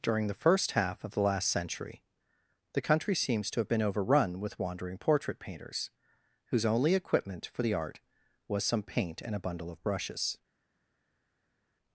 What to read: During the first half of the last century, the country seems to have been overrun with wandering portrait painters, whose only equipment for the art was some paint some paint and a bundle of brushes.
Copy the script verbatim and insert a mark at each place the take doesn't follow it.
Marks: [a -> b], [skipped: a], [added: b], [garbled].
During the first half of the last century, the country seems to have been overrun with wandering portrait painters, whose only equipment for the art was some paint [skipped: some paint] and a bundle of brushes.